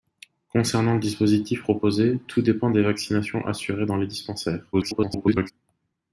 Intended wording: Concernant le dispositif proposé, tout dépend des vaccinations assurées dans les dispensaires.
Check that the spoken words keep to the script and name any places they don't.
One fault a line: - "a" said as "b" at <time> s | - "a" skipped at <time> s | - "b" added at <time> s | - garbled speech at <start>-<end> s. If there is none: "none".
- garbled speech at 4.7-5.5 s